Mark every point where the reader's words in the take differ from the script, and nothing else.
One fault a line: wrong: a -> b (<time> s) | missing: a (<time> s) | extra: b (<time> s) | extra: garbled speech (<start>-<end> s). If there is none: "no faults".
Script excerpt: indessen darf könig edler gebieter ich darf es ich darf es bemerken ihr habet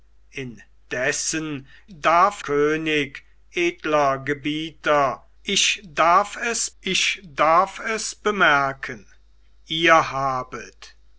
no faults